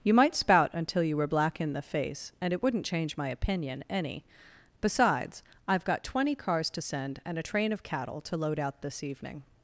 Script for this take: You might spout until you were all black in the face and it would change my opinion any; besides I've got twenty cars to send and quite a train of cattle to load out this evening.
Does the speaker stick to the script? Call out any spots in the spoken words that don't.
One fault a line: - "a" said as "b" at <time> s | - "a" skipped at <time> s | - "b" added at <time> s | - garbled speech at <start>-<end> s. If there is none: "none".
- "all" skipped at 1.3 s
- "would" said as "wouldn't" at 2.6 s
- "quite" skipped at 7.4 s